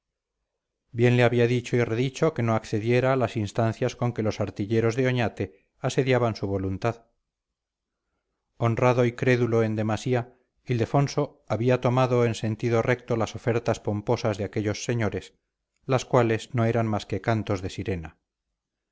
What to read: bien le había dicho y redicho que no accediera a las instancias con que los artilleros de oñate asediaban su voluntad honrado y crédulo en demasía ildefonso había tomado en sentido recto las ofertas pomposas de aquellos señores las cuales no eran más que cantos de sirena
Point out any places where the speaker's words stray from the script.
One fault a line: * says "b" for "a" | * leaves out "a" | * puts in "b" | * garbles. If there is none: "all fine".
all fine